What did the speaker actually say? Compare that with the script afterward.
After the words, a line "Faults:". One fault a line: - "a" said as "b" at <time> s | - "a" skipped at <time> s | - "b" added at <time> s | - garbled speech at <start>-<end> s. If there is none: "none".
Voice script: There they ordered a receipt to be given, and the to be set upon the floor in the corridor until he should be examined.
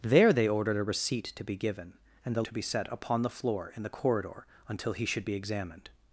There they ordered a receipt to be given, and the to be set upon the floor in the corridor until he should be examined.
Faults:
none